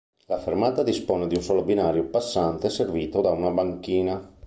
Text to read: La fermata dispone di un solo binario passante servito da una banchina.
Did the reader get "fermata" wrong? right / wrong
right